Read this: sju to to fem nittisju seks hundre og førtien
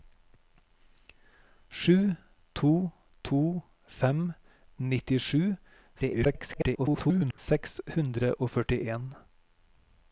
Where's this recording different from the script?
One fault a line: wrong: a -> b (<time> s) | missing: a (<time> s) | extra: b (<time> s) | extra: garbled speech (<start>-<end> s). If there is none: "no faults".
extra: garbled speech (6.0-7.4 s)